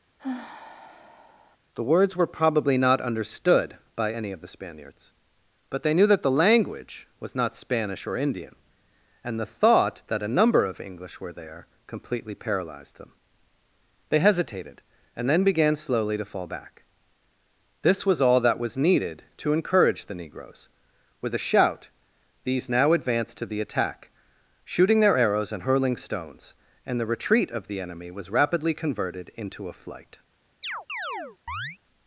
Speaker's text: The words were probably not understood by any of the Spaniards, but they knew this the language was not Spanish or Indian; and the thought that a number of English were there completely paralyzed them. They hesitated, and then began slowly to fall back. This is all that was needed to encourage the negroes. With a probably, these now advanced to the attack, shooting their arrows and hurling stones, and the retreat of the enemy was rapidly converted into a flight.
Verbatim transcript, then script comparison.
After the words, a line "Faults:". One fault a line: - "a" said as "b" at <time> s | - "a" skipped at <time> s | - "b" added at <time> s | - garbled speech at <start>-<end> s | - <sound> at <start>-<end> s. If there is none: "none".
The words were probably not understood by any of the Spaniards, but they knew that the language was not Spanish or Indian; and the thought that a number of English were there completely paralyzed them. They hesitated, and then began slowly to fall back. This was all that was needed to encourage the negroes. With a shout, these now advanced to the attack, shooting their arrows and hurling stones, and the retreat of the enemy was rapidly converted into a flight.
Faults:
- sigh at 0.2-1.6 s
- "this" said as "that" at 6.1 s
- "is" said as "was" at 18.1 s
- "probably" said as "shout" at 21.5 s
- chirp at 30.6-31.8 s